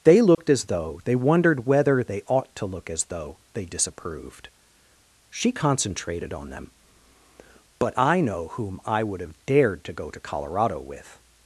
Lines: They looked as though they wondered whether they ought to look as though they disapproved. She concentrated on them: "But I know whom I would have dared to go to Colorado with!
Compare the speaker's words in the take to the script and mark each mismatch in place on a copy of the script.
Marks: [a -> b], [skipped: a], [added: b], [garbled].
They looked as though they wondered whether they ought to look as though they disapproved. She concentrated on them: "But I know whom I would have dared to go to Colorado with!